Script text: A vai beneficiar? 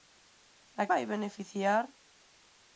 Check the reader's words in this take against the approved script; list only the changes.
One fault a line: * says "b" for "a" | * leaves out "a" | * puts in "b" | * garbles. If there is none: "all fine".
all fine